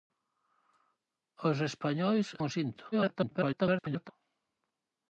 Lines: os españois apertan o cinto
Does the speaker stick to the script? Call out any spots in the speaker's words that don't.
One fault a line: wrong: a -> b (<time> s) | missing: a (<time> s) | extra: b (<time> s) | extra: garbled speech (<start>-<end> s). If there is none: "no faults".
missing: apertan (2.3 s)
extra: garbled speech (2.9-4.1 s)